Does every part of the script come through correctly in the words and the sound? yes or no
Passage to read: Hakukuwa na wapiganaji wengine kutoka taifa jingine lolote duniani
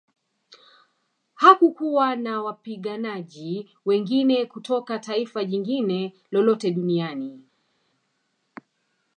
yes